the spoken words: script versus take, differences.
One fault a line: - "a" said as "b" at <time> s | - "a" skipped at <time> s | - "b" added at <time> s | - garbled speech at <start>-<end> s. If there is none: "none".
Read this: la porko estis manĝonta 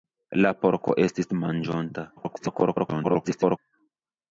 - garbled speech at 2.2-3.6 s